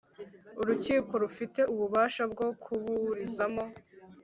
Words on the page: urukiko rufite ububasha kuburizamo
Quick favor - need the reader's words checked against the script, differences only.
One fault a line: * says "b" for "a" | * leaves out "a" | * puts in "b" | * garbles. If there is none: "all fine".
* puts in "bwo"